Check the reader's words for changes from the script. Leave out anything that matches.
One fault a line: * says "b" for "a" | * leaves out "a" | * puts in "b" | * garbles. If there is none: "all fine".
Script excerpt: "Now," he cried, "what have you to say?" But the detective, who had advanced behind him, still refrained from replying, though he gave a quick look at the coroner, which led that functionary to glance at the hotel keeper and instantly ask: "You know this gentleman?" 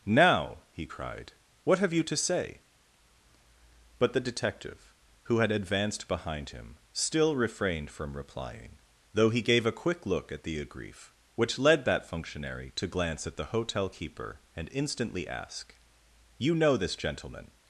* says "agrief" for "coroner"